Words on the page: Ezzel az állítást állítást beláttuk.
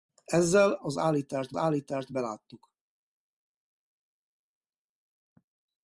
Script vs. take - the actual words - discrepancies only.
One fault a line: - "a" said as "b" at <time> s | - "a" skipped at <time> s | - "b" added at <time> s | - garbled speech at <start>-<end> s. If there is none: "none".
none